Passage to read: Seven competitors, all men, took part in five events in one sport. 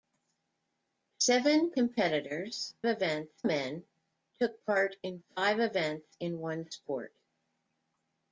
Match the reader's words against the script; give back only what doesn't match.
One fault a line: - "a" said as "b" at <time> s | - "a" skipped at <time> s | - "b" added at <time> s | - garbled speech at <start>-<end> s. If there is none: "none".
- "all" said as "events" at 2.9 s